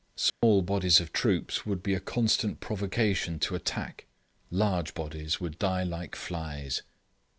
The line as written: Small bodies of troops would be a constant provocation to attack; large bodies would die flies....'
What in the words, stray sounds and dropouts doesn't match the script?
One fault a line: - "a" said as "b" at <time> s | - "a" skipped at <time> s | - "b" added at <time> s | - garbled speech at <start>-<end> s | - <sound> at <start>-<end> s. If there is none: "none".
- dropout at 0.3-0.4 s
- "like" added at 5.8 s